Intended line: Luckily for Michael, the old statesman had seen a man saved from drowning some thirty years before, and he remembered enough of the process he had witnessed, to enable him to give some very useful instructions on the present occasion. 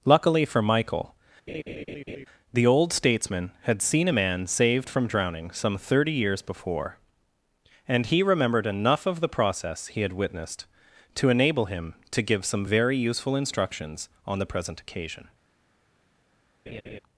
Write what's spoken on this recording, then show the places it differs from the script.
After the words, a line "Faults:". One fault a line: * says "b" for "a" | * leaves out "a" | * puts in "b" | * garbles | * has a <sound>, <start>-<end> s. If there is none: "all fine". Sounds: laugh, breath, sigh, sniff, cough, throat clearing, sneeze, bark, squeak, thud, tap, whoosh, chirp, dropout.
Luckily for Michael, the old statesman had seen a man saved from drowning some thirty years before, and he remembered enough of the process he had witnessed, to enable him to give some very useful instructions on the present occasion.
Faults:
* has a laugh, 1.5-2.3 s
* has a laugh, 16.7-17.0 s